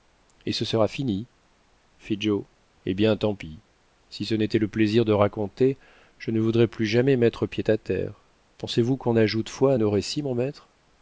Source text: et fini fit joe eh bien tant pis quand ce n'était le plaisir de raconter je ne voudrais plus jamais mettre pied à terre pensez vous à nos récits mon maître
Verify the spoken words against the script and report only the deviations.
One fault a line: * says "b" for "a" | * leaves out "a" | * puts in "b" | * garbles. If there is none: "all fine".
* puts in "ce sera"
* says "si" for "quand"
* puts in "qu'on ajoute foi"